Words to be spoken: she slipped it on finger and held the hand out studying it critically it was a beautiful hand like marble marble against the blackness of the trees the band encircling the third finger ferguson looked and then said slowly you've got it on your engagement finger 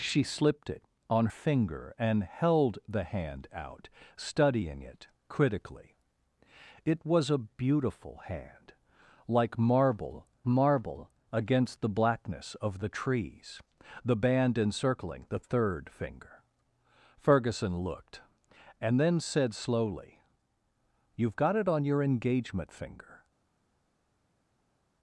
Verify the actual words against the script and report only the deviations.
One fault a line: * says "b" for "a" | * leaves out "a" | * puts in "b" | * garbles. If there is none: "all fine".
all fine